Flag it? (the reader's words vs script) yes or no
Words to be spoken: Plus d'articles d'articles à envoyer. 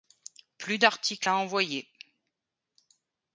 yes